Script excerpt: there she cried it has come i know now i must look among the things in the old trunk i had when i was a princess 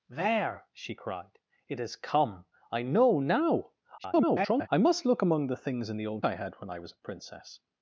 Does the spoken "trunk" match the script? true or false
false